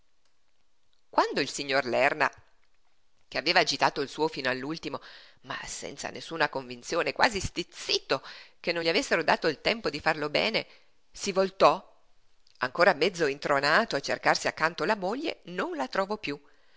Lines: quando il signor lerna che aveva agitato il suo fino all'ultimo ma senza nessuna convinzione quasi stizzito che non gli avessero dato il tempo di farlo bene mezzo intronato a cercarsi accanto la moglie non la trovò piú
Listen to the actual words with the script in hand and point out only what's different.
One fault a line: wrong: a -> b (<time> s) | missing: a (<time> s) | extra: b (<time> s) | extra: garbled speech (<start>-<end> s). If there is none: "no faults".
extra: si voltò ancora (11.1 s)